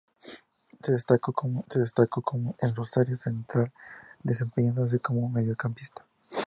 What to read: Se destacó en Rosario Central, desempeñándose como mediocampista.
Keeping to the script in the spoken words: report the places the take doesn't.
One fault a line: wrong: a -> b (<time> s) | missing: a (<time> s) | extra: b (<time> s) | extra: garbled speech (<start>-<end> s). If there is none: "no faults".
extra: se destacó (1.7 s)